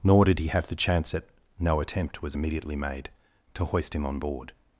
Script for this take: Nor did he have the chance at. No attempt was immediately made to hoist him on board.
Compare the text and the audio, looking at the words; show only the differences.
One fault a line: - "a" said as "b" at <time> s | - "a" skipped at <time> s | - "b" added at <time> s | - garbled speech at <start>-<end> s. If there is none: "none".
none